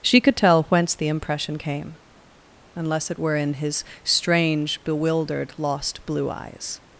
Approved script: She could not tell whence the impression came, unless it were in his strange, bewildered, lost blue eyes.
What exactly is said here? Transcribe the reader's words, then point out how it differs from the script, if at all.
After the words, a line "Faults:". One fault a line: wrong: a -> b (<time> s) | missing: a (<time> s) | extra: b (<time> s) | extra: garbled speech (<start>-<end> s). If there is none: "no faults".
She could tell whence the impression came, unless it were in his strange, bewildered, lost blue eyes.
Faults:
missing: not (0.3 s)